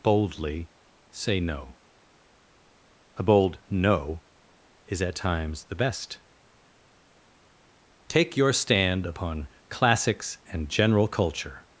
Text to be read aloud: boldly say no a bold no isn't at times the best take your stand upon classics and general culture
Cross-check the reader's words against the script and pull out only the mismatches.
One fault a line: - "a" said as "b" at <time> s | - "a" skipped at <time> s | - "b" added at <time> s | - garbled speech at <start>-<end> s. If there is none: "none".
- "isn't" said as "is" at 4.9 s